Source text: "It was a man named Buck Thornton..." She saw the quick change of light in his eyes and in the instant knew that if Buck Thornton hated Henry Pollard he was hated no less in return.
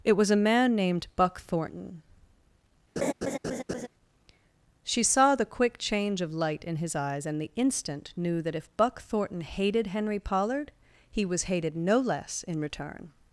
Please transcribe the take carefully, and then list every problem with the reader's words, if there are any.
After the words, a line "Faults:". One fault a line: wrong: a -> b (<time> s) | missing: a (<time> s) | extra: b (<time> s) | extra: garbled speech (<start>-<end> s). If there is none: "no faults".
"It was a man named Buck Thornton..." She saw the quick change of light in his eyes and the instant knew that if Buck Thornton hated Henry Pollard he was hated no less in return.
Faults:
missing: in (7.4 s)